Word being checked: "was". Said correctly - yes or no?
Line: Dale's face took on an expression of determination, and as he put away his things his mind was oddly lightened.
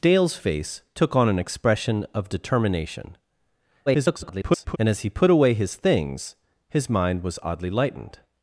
yes